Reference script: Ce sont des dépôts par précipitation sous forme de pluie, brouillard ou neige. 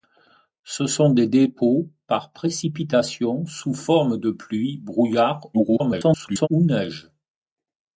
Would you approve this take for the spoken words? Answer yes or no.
no